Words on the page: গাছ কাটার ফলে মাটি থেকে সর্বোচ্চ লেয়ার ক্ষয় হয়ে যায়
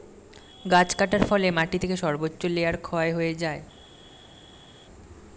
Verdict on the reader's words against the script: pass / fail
pass